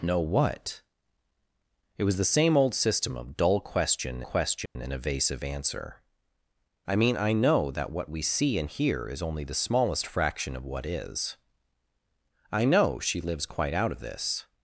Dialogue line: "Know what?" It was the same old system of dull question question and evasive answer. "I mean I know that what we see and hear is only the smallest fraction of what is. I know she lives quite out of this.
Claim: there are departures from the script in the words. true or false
false